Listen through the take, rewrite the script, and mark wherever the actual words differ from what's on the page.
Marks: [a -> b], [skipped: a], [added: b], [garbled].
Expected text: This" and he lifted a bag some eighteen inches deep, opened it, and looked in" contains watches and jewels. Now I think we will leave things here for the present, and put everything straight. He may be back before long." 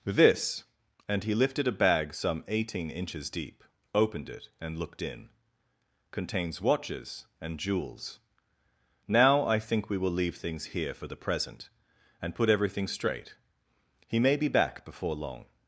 This" and he lifted a bag some eighteen inches deep, opened it, and looked in" contains watches and jewels. Now I think we will leave things here for the present, and put everything straight. He may be back before long."